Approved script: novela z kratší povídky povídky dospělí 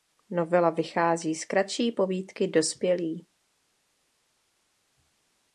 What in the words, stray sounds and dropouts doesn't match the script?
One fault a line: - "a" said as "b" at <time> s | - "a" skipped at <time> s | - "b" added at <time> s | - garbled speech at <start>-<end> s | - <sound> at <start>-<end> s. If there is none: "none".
- "vychází" added at 0.7 s
- "povídky" skipped at 2.5 s